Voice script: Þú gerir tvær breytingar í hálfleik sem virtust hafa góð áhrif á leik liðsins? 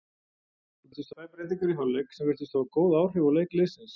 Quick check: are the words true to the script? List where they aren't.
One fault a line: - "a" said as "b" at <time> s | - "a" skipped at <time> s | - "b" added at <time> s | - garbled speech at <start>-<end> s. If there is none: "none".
- "gerir" said as "virtust" at 0.9 s